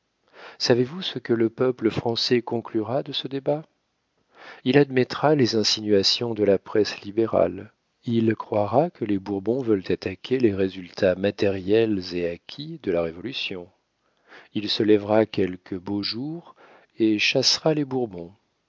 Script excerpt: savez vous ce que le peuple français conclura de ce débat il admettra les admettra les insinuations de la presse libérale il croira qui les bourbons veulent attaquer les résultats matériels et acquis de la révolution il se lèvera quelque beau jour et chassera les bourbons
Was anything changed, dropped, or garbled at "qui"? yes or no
yes